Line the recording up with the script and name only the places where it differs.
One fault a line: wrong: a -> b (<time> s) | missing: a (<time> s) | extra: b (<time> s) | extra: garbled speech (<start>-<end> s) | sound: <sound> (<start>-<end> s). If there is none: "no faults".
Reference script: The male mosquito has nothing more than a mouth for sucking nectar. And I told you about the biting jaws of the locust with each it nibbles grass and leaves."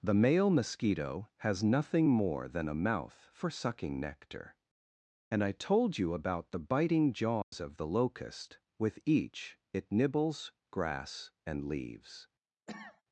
sound: dropout (7.4-7.5 s)
sound: cough (12.7-13.0 s)